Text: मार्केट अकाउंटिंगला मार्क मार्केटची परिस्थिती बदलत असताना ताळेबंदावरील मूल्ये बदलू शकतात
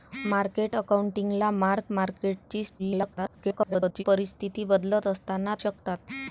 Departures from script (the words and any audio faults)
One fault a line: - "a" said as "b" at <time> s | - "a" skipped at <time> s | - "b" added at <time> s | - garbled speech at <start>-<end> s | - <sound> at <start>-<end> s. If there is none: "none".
- garbled speech at 2.8-4.0 s
- "ताळेबंदावरील मूल्ये बदलू" skipped at 5.5 s